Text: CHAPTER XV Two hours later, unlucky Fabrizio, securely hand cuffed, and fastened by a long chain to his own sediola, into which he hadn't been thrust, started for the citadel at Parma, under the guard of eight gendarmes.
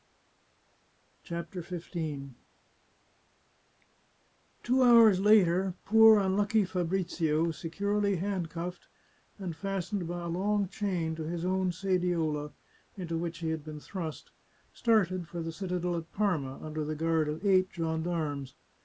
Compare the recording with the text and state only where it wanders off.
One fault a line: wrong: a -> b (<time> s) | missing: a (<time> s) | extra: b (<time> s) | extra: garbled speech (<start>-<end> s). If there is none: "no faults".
extra: poor (5.8 s)
wrong: hadn't -> had (13.5 s)